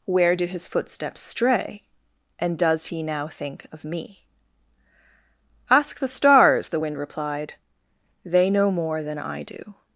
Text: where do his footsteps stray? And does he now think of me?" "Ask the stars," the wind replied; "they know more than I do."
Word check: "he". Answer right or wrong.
right